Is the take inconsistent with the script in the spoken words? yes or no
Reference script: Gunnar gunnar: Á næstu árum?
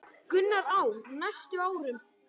yes